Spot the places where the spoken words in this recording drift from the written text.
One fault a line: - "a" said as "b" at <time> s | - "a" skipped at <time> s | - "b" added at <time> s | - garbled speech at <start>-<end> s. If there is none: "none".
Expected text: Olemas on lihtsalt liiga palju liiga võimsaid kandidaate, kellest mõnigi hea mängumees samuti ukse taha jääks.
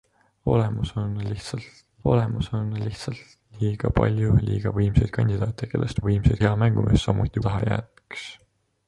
- "olemas on lihtsalt" added at 2.1 s
- "mõnigi" said as "võimsaid" at 6.1 s
- "ukse" skipped at 7.4 s